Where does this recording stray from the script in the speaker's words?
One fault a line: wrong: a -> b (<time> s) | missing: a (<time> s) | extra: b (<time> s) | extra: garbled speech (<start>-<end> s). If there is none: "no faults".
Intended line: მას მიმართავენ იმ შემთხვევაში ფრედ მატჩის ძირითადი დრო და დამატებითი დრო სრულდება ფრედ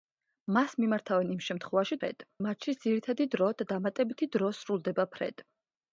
no faults